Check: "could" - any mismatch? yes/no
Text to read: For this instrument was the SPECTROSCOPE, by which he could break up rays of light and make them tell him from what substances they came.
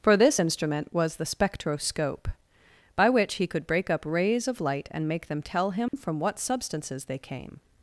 no